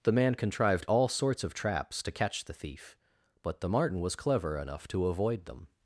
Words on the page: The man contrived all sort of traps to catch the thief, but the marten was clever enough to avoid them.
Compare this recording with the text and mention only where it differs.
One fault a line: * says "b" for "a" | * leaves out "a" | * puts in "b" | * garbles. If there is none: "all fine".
* says "sorts" for "sort"